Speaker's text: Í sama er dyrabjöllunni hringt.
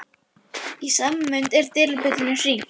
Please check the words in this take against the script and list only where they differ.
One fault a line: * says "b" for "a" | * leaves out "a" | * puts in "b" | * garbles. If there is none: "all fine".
* puts in "mund"